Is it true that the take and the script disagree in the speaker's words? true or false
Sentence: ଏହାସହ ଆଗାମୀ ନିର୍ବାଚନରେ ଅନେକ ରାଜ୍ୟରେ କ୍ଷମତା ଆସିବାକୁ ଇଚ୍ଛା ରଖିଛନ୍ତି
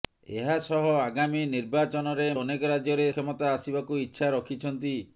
false